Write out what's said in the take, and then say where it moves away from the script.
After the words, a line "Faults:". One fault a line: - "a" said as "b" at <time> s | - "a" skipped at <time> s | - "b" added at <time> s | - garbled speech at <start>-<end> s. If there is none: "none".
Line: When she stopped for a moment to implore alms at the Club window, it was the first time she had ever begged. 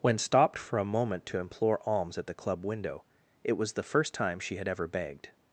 When stopped for a moment to implore alms at the Club window, it was the first time she had ever begged.
Faults:
- "she" skipped at 0.2 s